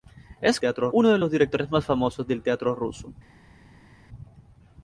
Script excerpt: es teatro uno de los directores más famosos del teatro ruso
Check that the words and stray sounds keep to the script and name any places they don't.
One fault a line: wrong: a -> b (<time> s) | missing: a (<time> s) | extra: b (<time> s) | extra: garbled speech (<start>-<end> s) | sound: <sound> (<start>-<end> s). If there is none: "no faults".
no faults